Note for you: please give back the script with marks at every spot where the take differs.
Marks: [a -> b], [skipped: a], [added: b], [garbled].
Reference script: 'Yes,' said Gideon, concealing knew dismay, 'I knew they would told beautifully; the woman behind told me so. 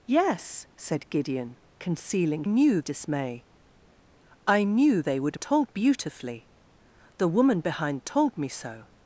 'Yes,' said Gideon, concealing knew dismay, 'I knew they would told beautifully; the woman behind told me so.